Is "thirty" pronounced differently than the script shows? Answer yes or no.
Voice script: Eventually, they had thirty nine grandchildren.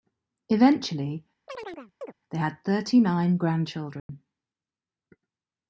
no